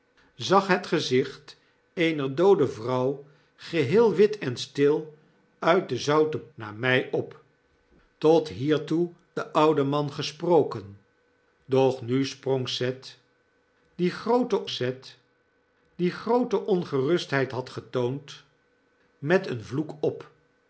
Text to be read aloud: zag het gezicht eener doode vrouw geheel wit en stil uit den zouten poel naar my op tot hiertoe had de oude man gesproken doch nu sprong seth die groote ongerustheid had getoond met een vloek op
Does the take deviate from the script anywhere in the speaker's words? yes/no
yes